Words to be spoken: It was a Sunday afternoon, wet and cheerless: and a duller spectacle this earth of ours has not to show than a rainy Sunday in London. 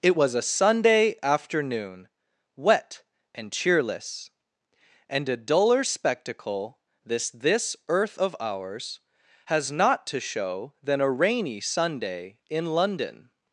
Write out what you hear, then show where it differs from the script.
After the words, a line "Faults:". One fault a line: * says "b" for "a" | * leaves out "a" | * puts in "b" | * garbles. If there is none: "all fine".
It was a Sunday afternoon, wet and cheerless: and a duller spectacle this this earth of ours has not to show than a rainy Sunday in London.
Faults:
* puts in "this"